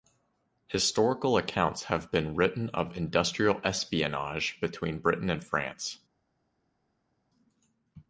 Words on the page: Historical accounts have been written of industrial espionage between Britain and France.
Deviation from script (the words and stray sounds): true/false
false